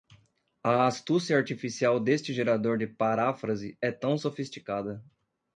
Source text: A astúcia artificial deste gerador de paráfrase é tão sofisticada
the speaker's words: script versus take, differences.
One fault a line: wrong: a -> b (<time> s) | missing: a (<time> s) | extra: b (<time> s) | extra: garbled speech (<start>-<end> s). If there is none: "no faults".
no faults